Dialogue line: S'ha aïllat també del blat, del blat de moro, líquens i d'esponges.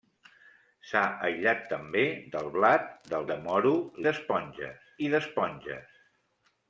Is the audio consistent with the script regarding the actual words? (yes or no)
no